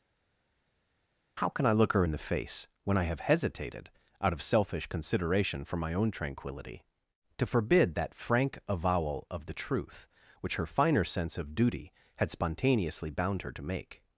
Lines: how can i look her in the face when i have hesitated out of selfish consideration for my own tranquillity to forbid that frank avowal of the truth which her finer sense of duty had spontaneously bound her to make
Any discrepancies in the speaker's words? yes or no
no